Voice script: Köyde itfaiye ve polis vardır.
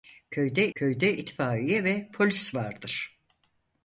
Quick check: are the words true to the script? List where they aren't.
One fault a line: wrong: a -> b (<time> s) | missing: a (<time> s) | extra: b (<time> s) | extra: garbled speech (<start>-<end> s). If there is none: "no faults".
extra: köyde (0.8 s)